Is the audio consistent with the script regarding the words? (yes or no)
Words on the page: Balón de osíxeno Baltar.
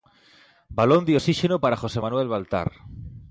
no